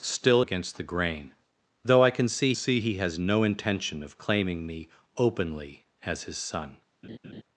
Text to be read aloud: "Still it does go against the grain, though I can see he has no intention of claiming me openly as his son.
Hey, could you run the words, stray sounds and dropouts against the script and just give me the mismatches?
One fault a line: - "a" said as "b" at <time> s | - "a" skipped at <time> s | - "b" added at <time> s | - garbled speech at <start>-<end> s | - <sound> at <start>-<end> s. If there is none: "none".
- "it does go" skipped at 0.4 s
- "see" added at 2.5 s
- laugh at 7.0-7.4 s